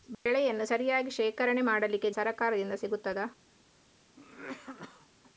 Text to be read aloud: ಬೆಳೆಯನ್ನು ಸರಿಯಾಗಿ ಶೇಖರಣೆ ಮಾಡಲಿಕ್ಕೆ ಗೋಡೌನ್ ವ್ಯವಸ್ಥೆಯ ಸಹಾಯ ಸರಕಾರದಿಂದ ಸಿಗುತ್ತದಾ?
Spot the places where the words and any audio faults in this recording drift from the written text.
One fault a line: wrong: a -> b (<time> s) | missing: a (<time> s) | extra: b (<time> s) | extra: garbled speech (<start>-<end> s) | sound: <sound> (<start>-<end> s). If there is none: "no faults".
sound: dropout (0.1-0.3 s)
missing: ಗೋಡೌನ್ ವ್ಯವಸ್ಥೆಯ ಸಹಾಯ (2.1 s)
sound: cough (4.2-5.1 s)